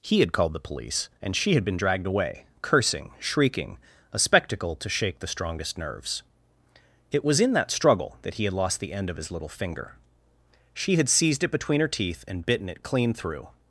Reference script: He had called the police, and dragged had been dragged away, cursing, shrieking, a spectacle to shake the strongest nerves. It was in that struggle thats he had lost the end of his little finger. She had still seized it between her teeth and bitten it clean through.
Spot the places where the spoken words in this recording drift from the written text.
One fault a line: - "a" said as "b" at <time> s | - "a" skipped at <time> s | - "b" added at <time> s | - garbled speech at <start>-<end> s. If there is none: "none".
- "dragged" said as "she" at 1.4 s
- "thats" said as "that" at 8.2 s
- "still" skipped at 11.1 s